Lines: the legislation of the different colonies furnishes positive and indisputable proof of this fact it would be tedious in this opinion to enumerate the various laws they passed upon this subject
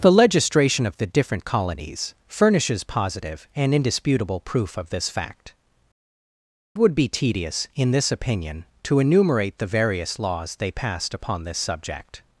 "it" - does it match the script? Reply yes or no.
no